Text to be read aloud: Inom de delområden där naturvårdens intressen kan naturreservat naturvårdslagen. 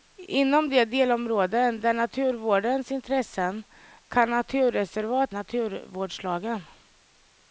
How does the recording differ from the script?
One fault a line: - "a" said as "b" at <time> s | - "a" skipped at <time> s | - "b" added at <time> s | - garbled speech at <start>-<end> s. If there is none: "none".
none